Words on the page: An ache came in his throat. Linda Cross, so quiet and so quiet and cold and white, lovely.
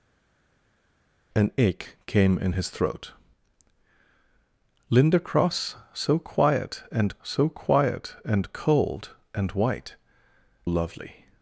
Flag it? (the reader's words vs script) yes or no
no